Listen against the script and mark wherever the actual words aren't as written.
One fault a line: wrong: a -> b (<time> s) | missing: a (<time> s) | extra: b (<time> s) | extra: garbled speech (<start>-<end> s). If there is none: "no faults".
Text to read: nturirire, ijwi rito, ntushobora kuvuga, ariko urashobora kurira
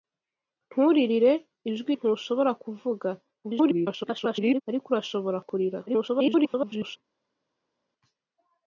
missing: rito (1.9 s)
extra: garbled speech (3.4-4.6 s)
extra: garbled speech (5.9-7.0 s)